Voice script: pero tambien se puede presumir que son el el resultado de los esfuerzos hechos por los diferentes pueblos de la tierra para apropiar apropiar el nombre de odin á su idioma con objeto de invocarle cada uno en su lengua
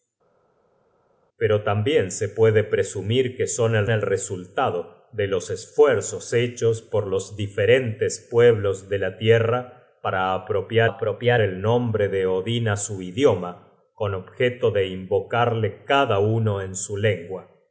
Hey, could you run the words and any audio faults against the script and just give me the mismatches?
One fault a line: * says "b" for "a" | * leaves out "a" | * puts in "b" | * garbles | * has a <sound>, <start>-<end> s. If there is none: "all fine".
all fine